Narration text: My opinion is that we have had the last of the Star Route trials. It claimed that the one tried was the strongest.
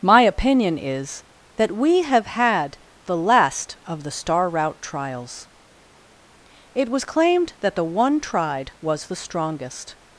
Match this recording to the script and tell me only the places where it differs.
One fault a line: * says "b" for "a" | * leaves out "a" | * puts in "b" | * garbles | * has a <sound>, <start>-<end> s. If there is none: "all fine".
* puts in "was"